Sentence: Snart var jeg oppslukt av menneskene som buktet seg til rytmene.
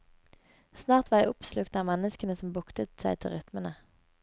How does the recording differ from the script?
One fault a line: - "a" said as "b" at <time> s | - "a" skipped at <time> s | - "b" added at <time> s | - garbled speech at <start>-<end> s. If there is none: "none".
none